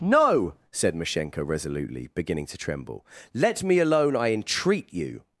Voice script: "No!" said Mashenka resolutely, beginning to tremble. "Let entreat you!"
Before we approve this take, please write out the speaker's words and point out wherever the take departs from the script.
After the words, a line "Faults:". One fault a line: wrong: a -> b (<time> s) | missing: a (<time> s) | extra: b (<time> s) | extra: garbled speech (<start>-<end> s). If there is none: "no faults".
"No!" said Mashenka resolutely, beginning to tremble. "Let me alone, I entreat you!"
Faults:
extra: me alone I (3.6 s)